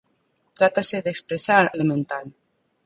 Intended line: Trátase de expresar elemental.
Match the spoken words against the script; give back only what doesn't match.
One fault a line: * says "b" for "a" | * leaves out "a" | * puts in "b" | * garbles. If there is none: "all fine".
all fine